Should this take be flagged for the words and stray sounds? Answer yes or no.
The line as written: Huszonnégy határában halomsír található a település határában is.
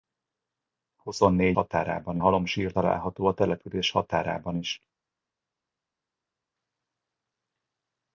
no